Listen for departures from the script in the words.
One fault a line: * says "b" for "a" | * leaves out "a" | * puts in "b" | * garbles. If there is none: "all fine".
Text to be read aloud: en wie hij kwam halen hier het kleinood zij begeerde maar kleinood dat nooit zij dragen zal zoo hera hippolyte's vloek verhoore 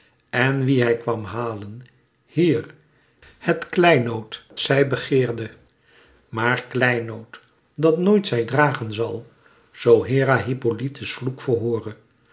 all fine